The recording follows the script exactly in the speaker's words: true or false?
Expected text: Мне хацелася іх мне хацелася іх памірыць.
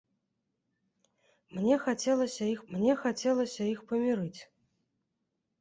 true